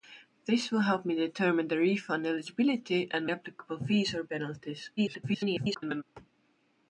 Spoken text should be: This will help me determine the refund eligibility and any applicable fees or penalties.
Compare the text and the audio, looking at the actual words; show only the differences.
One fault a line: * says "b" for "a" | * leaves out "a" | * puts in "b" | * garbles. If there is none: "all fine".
* leaves out "any"
* garbles